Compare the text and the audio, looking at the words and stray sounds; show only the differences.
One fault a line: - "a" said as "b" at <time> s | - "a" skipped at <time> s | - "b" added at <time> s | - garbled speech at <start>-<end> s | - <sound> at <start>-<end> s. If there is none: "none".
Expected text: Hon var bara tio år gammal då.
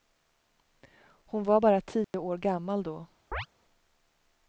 - dropout at 2.0-2.1 s
- chirp at 3.3-3.5 s